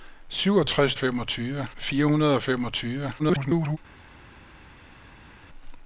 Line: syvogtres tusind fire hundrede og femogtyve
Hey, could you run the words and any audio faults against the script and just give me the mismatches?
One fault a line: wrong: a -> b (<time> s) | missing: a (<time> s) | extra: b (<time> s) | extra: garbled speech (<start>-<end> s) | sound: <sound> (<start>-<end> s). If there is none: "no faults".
wrong: tusind -> femogtyve (1.0 s)
extra: garbled speech (3.2-3.8 s)